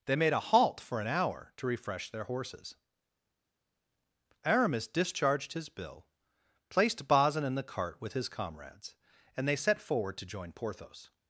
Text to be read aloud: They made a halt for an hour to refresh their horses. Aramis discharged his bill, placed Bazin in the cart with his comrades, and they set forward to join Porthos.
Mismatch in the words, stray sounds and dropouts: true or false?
false